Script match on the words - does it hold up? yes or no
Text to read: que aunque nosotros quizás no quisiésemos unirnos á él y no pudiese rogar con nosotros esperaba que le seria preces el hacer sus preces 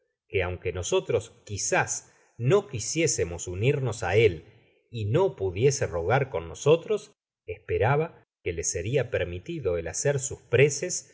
no